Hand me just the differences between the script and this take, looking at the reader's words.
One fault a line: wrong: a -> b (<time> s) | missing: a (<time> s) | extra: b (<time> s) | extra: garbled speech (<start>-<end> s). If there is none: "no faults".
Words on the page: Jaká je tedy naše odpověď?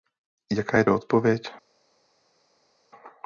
missing: tedy naše (0.8 s)